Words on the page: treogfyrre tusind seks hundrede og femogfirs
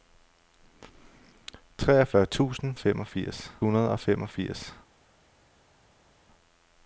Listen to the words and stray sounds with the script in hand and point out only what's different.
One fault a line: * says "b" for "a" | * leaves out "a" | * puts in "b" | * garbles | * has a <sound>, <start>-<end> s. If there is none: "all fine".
* says "femogfirs" for "seks"